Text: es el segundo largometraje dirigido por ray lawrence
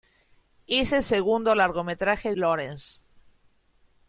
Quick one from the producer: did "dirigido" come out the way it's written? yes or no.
no